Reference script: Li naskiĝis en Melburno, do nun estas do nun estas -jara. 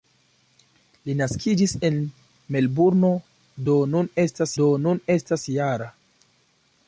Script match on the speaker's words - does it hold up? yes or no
yes